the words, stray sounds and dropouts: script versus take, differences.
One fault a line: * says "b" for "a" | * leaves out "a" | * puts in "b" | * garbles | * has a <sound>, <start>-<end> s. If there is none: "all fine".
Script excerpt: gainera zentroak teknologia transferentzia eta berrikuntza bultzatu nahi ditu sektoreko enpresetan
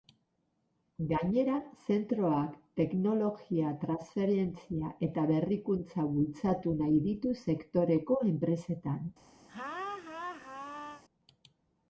* has a laugh, 9.5-11.0 s